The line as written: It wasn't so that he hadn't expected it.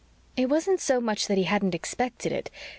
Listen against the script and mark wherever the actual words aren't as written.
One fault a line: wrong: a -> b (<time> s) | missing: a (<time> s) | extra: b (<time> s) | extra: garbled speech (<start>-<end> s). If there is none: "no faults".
extra: much (1.0 s)